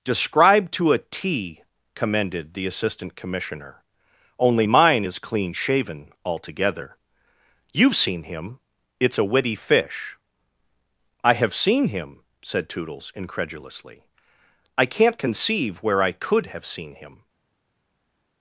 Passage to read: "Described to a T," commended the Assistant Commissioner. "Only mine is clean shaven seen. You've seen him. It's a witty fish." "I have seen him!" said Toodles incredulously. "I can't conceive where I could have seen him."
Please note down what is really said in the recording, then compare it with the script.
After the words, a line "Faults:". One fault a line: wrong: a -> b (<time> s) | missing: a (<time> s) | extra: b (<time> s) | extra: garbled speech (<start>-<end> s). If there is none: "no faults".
"Described to a T," commended the Assistant Commissioner. "Only mine is clean shaven altogether. You've seen him. It's a witty fish." "I have seen him!" said Toodles incredulously. "I can't conceive where I could have seen him."
Faults:
wrong: seen -> altogether (6.2 s)